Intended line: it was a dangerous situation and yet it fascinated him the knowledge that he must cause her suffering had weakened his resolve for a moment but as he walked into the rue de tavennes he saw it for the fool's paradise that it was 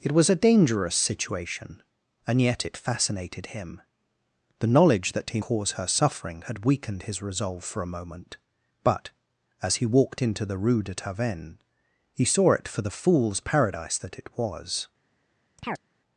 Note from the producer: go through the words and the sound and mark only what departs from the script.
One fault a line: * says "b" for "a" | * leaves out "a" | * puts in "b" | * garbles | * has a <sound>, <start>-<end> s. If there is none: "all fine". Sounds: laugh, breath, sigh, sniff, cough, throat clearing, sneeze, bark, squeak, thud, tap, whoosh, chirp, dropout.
* leaves out "must"
* has a chirp, 15.6-15.8 s